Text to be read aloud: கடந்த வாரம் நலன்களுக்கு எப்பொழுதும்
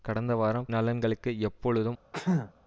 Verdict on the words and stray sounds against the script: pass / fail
fail